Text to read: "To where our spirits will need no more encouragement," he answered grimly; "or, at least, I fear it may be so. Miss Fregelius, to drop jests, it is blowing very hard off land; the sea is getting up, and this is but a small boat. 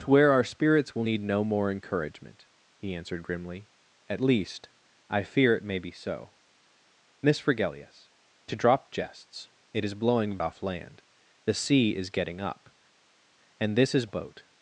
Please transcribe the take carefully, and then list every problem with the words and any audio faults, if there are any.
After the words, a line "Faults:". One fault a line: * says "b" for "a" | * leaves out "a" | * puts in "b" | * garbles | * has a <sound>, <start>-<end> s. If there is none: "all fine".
"To where our spirits will need no more encouragement," he answered grimly; "at least, I fear it may be so. Miss Fregelius, to drop jests, it is blowing off land; the sea is getting up, and this is boat.
Faults:
* leaves out "or"
* leaves out "very hard"
* leaves out "but a small"